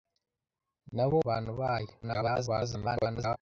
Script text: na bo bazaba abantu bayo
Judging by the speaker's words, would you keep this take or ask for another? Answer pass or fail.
fail